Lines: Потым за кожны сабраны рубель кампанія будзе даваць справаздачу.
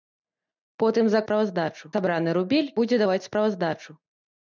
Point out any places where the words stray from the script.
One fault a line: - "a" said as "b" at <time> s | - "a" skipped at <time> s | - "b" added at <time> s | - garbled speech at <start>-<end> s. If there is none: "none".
- "кожны" said as "справаздачу" at 1.2 s
- "кампанія" skipped at 2.7 s